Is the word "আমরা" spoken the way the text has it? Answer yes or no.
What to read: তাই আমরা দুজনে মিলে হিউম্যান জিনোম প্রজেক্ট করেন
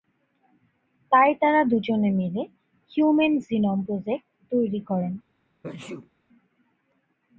no